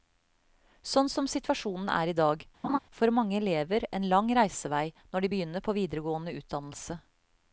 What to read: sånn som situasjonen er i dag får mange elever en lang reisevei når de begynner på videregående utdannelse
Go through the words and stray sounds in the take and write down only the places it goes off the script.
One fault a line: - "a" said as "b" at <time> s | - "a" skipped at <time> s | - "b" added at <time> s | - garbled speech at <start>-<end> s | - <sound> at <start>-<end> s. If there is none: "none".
- laugh at 2.6-2.8 s